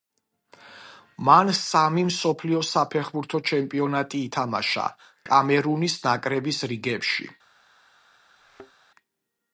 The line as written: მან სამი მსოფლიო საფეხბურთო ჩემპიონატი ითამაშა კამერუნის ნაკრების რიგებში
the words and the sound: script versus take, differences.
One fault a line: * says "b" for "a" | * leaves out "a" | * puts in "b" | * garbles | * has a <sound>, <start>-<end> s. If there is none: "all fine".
* has a thud, 8.4-8.7 s